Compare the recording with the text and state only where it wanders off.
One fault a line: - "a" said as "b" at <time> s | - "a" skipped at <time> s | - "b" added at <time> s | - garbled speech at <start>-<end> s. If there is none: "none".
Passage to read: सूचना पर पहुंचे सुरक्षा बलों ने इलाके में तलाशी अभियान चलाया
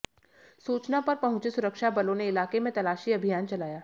none